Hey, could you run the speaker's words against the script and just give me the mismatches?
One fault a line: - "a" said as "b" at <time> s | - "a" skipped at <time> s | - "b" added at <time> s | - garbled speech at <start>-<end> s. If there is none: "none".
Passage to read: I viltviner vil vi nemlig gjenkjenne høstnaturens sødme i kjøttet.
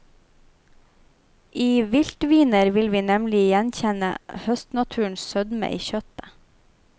none